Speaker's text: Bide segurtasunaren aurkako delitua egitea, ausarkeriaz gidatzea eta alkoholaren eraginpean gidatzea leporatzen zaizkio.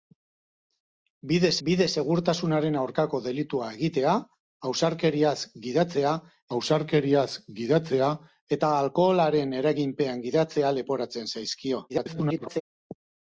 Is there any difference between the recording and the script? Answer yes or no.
yes